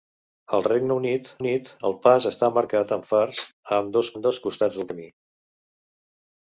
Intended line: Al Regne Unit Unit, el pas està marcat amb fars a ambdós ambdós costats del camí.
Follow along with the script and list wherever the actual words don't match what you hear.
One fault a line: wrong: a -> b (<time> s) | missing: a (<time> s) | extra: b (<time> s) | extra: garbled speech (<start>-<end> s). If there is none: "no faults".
no faults